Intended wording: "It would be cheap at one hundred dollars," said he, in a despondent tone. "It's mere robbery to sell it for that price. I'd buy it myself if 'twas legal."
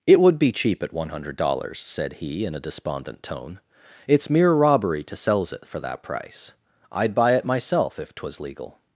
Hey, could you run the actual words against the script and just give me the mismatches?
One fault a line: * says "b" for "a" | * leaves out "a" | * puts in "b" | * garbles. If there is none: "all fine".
* says "sells" for "sell"